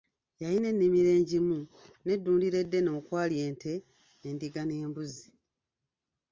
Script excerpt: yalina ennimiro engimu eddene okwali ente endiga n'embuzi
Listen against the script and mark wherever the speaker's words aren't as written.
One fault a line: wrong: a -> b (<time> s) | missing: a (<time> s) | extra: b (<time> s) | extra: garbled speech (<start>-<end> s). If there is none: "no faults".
extra: n'eddundiro (2.0 s)